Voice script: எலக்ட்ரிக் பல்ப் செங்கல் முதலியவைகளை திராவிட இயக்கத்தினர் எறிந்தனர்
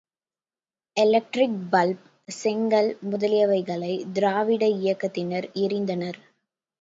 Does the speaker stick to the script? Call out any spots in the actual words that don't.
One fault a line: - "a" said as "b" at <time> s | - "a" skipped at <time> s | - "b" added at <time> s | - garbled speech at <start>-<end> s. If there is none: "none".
none